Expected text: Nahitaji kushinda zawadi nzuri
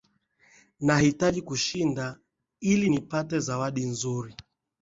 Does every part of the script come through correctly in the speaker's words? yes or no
no